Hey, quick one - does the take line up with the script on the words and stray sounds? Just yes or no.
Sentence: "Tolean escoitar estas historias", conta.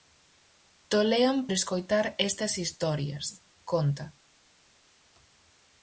yes